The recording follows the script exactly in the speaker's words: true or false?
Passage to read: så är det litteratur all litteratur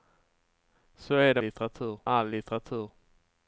true